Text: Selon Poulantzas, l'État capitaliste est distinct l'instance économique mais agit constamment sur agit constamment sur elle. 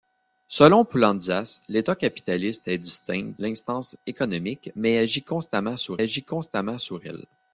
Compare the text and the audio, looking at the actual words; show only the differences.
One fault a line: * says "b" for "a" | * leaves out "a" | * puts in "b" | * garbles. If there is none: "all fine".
all fine